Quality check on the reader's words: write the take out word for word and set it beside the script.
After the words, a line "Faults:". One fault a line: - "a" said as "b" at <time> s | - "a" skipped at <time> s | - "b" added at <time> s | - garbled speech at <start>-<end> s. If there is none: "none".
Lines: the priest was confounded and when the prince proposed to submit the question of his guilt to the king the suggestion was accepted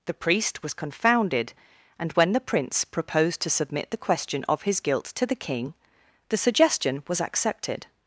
the priest was confounded and when the prince proposed to submit the question of his guilt to the king the suggestion was accepted
Faults:
none